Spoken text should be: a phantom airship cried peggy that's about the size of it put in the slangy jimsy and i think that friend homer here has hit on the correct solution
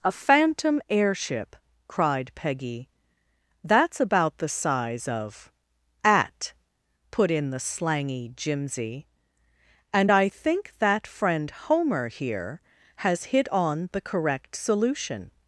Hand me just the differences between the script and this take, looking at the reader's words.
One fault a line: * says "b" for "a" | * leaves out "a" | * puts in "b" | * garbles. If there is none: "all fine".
* says "at" for "it"